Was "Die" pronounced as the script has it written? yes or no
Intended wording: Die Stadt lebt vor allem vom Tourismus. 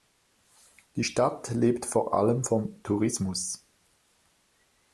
yes